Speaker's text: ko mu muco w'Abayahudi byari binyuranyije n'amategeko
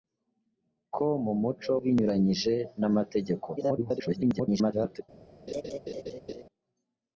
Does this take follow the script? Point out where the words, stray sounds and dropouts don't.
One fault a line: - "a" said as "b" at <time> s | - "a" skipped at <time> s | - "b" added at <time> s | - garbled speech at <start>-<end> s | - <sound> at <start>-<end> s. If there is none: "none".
- "w'Abayahudi byari" skipped at 1.7 s
- garbled speech at 3.6-5.0 s
- laugh at 5.5-6.4 s